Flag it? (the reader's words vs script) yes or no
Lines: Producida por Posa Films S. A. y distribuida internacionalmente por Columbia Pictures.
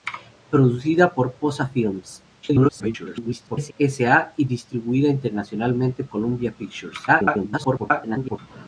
yes